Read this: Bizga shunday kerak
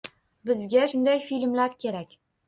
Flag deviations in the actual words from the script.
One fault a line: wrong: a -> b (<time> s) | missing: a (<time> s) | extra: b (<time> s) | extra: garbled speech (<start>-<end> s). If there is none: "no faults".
extra: filmlar (1.3 s)